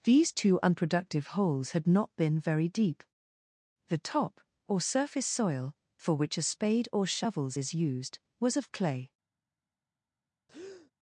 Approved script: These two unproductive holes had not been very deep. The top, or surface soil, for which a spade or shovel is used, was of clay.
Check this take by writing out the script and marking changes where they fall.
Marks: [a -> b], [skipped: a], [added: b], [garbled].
These two unproductive holes had not been very deep. The top, or surface soil, for which a spade or [shovel -> shovels] is used, was of clay.